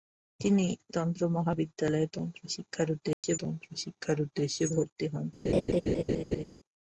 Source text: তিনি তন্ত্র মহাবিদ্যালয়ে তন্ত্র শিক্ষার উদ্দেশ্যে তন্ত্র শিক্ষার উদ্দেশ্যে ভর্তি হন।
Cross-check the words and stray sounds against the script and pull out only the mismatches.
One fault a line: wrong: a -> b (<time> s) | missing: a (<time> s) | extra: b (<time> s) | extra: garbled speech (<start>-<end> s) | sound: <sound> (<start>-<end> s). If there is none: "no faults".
sound: dropout (3.1-3.2 s)
sound: laugh (5.4-6.4 s)